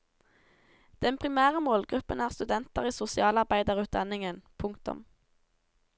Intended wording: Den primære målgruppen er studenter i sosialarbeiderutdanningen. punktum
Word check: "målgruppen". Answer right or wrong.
right